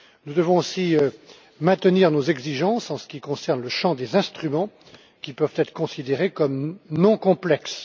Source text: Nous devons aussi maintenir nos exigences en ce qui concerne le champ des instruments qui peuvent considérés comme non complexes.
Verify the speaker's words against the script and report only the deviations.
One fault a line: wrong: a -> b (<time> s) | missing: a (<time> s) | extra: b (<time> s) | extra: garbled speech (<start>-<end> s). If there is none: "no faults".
extra: être (5.6 s)